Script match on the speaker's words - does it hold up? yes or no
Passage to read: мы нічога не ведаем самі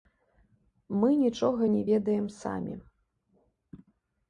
yes